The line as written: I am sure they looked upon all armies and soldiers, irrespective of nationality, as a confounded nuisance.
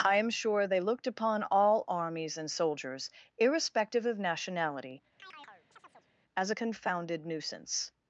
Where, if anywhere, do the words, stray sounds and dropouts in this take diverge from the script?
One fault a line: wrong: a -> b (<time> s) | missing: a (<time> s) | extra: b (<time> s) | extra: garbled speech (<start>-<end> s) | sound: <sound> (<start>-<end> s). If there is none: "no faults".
sound: chirp (5.2-6.1 s)